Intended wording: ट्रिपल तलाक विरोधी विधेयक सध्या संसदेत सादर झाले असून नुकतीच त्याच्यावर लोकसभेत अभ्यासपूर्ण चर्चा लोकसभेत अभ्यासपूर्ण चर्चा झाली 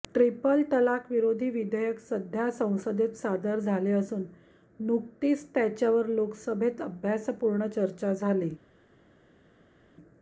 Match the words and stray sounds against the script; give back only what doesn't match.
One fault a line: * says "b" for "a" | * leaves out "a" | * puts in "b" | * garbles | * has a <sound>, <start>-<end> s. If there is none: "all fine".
* leaves out "लोकसभेत अभ्यासपूर्ण चर्चा"